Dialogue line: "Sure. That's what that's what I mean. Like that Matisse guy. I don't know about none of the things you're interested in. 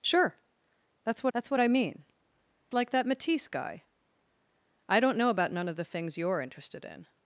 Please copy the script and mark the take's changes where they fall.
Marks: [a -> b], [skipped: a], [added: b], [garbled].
"Sure. That's what that's what I mean. Like that Matisse guy. I don't know about none of the things you're interested in.